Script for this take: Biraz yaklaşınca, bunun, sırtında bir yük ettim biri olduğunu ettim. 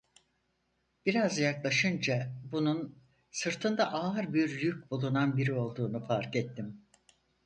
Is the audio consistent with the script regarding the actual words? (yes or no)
no